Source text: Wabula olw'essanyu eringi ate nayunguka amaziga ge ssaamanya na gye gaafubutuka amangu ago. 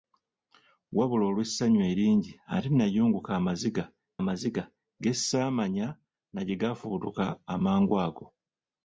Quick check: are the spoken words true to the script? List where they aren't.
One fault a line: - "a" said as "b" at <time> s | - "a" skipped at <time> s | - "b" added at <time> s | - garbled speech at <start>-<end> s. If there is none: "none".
- "amaziga" added at 4.2 s